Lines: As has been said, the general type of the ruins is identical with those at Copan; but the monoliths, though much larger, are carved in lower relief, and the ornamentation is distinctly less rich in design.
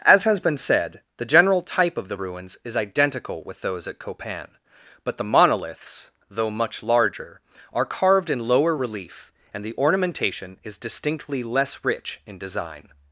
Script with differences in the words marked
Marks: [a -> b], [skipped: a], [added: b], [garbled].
As has been said, the general type of the ruins is identical with those at Copan; but the monoliths, though much larger, are carved in lower relief, and the ornamentation is distinctly less rich in design.